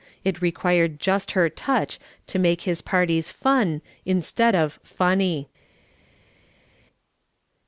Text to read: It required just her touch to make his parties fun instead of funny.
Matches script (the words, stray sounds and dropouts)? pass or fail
pass